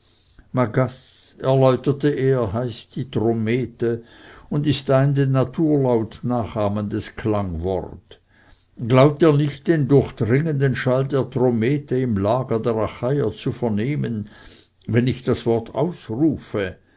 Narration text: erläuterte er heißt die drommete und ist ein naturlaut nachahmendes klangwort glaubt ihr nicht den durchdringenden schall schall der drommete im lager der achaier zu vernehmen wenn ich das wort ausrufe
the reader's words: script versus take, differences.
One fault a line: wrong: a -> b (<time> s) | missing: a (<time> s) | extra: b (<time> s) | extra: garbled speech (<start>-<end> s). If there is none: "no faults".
extra: den (5.1 s)
missing: schall (11.0 s)